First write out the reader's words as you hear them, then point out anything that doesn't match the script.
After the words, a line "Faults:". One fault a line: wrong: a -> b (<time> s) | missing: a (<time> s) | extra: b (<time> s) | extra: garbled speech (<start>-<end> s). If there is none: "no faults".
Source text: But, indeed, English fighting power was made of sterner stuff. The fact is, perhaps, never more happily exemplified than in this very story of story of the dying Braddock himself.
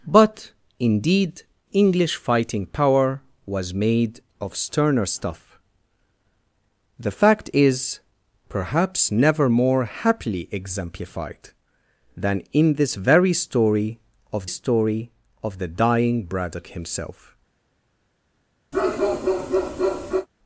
But, indeed, English fighting power was made of sterner stuff. The fact is, perhaps, never more happily exemplified than in this very story of story of the dying Braddock himself.
Faults:
no faults